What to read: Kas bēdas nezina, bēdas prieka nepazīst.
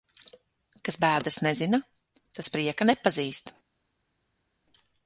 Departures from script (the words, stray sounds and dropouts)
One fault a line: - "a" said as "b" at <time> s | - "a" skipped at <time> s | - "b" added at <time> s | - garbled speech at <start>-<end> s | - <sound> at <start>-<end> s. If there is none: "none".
- "bēdas" said as "tas" at 2.4 s